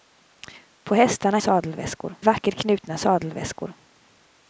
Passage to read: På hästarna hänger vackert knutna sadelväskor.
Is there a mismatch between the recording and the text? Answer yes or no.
yes